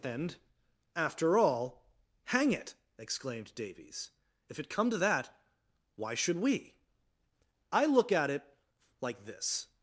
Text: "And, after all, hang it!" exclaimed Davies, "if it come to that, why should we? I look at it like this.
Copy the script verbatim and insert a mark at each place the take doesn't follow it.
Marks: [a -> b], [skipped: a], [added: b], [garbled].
"And, after all, hang it!" exclaimed Davies, "if it come to that, why should we? I look at it like this.